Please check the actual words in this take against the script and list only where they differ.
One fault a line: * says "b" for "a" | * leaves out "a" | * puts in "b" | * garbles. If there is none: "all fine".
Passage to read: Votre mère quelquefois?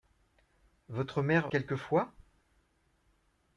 all fine